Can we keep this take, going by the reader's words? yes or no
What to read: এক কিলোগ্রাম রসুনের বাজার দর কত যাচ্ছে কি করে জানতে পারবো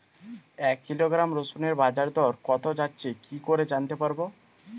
yes